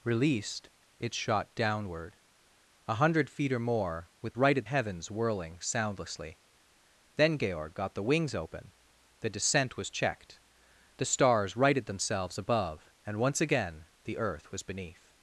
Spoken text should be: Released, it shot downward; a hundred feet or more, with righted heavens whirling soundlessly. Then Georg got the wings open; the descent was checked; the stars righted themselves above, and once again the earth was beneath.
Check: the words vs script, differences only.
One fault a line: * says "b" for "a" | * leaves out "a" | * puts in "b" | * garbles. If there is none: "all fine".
all fine